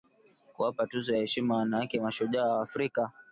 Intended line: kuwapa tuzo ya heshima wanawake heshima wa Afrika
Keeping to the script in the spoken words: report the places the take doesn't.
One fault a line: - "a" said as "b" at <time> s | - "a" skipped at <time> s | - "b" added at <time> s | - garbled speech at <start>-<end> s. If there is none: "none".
- "heshima" said as "mashujaa" at 2.0 s